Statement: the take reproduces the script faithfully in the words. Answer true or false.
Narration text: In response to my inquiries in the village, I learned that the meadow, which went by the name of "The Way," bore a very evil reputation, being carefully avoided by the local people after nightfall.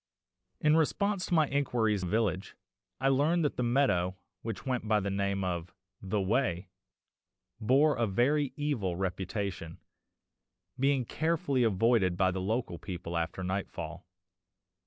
false